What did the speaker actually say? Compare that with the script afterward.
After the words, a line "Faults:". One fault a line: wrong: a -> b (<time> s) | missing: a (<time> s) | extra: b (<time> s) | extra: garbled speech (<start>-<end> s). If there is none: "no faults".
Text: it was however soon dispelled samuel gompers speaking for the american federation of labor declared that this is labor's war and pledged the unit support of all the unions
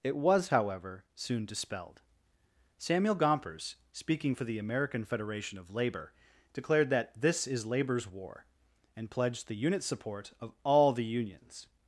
it was however soon dispelled samuel gompers speaking for the american federation of labor declared that this is labor's war and pledged the unit support of all the unions
Faults:
no faults